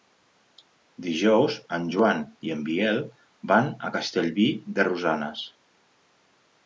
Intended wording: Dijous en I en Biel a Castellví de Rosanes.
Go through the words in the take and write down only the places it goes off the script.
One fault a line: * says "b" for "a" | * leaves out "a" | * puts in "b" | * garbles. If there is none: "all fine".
* puts in "Joan"
* puts in "van"